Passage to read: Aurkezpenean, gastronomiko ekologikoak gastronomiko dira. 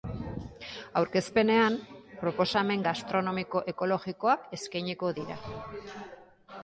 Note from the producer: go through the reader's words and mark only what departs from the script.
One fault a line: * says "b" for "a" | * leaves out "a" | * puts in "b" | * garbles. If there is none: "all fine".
* puts in "proposamen"
* says "eskainiko" for "gastronomiko"